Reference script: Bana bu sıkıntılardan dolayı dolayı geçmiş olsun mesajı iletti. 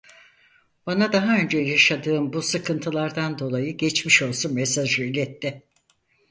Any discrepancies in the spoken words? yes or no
yes